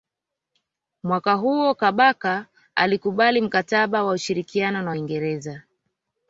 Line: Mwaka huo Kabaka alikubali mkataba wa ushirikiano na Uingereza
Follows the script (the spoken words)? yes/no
yes